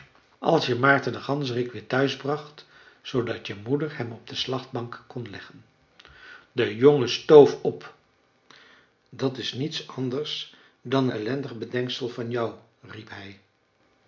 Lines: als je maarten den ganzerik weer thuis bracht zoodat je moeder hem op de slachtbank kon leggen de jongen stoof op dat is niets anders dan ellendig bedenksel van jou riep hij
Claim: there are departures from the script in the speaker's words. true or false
false